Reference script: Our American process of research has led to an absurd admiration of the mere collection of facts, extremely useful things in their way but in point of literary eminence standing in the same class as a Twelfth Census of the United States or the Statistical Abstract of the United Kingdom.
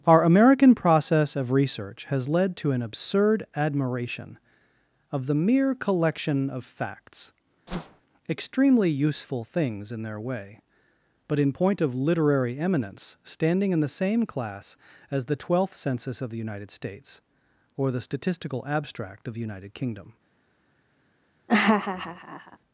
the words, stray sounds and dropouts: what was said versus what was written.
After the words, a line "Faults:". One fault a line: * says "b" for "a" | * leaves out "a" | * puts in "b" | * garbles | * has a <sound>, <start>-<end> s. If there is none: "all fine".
Our American process of research has led to an absurd admiration of the mere collection of facts, extremely useful things in their way but in point of literary eminence standing in the same class as the Twelfth Census of the United States or the Statistical Abstract of the United Kingdom.
Faults:
* has a whoosh, 7.7-8.0 s
* says "the" for "a"
* has a laugh, 21.5-22.6 s